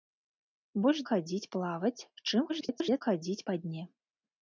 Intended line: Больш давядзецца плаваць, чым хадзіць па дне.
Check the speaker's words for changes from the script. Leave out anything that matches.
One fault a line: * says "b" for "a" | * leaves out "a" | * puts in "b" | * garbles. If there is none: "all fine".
* says "хадзіць" for "давядзецца"
* garbles